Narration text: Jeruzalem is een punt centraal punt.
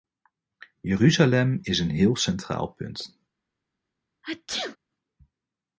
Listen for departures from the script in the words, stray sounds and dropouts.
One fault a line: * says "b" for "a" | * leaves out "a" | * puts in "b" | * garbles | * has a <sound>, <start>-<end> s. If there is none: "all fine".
* says "heel" for "punt"
* has a sneeze, 4.2-4.8 s